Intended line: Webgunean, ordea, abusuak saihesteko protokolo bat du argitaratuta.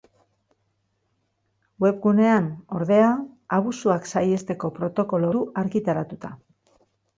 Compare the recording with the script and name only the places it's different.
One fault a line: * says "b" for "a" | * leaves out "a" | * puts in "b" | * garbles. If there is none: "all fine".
* leaves out "bat"